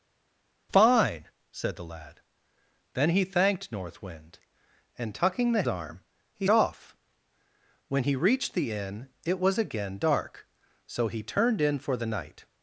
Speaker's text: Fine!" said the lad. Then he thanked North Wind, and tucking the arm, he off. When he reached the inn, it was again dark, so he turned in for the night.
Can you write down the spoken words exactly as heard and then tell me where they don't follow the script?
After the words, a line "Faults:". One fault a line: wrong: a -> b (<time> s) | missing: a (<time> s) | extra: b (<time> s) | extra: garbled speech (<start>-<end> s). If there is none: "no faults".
Fine!" said the lad. Then he thanked North Wind, and tucking the arm, he off. When he reached the inn, it was again dark, so he turned in for the night.
Faults:
no faults